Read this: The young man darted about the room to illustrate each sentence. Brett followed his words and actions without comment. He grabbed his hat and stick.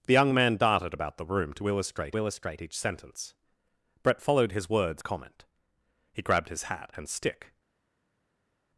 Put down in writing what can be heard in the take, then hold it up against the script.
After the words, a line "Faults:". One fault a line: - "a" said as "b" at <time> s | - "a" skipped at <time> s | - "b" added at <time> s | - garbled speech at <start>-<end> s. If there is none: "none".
The young man darted about the room to illustrate illustrate each sentence. Brett followed his words comment. He grabbed his hat and stick.
Faults:
- "illustrate" added at 2.2 s
- "and actions without" skipped at 5.0 s